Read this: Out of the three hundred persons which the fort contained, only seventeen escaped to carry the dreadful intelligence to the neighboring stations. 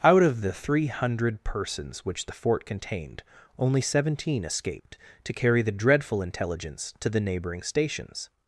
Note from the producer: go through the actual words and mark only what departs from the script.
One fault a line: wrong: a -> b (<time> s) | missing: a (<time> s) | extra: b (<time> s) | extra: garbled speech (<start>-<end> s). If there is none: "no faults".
no faults